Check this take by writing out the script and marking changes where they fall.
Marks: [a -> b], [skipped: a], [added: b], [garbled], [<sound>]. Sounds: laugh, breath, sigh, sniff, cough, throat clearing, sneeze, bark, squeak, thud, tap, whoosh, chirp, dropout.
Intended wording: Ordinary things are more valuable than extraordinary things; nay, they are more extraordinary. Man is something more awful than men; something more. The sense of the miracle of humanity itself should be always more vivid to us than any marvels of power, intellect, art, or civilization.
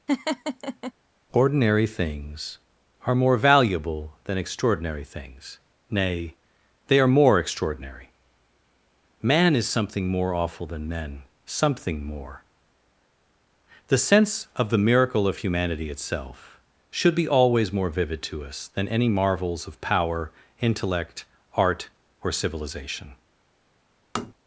[laugh] Ordinary things are more valuable than extraordinary things; nay, they are more extraordinary. Man is something more awful than men; something more. The sense of the miracle of humanity itself should be always more vivid to us than any marvels of power, intellect, art, or civilization. [tap]